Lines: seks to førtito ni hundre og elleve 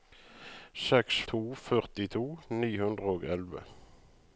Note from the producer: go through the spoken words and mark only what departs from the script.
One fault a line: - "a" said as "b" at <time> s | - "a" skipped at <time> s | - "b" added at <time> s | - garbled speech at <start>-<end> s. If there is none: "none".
none